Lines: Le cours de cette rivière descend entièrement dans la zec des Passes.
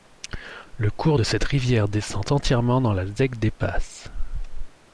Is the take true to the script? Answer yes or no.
yes